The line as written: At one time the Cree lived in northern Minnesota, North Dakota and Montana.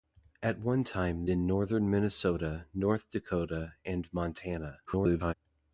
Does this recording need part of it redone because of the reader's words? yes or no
yes